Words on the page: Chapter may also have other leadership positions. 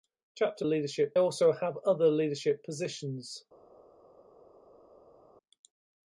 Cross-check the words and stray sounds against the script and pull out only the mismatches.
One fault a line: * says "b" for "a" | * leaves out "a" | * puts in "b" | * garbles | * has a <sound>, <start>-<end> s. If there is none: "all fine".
* says "leadership" for "may"